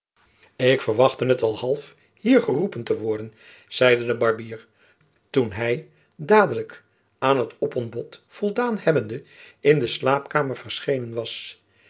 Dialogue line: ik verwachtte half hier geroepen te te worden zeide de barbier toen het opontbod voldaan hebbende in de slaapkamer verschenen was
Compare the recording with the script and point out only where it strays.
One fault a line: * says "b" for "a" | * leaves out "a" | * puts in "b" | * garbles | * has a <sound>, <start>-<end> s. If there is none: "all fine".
* puts in "het al"
* leaves out "te"
* puts in "hy dadelijk aan"